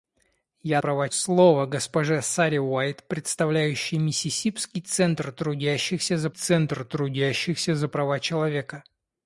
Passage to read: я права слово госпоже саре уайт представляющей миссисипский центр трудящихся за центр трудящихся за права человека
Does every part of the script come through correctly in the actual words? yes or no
yes